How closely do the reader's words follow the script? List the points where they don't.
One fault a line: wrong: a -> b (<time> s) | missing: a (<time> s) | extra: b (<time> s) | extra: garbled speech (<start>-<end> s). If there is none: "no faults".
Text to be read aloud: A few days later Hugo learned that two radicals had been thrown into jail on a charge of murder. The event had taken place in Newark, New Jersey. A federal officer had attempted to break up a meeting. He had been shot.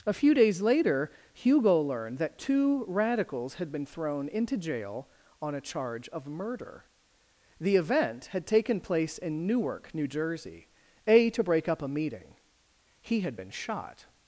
missing: federal officer had attempted (11.3 s)